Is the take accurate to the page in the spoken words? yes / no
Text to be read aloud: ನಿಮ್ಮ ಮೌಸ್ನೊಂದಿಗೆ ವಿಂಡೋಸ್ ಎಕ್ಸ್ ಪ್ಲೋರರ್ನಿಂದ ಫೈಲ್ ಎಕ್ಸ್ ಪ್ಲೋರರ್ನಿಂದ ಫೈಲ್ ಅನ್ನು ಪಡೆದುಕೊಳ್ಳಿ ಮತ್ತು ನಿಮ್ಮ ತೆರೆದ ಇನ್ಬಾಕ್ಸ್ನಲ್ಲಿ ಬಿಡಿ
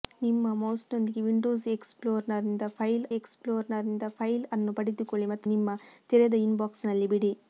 yes